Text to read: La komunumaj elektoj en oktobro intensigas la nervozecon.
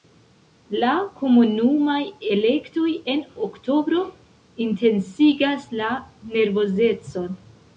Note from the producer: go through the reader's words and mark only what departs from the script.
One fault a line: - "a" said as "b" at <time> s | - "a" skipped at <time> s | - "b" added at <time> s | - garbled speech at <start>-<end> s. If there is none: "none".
none